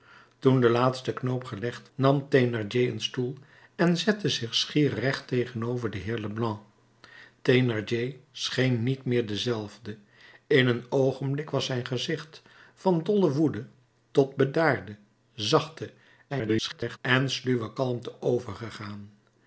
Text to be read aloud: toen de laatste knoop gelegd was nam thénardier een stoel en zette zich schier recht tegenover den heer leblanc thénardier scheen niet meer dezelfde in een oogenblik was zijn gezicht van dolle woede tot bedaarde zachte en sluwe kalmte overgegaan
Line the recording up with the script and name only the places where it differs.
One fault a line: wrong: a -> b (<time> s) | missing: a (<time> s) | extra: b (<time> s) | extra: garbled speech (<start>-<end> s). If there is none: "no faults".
missing: was (1.9 s)
extra: garbled speech (16.3-17.0 s)